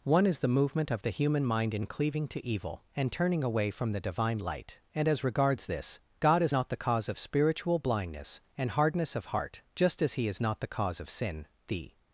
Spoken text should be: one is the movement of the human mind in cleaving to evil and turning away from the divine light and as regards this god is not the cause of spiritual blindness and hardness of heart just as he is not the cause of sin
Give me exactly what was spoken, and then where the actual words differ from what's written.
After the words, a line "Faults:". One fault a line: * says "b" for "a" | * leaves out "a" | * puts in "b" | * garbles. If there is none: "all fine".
one is the movement of the human mind in cleaving to evil and turning away from the divine light and as regards this god is not the cause of spiritual blindness and hardness of heart just as he is not the cause of sin the
Faults:
* puts in "the"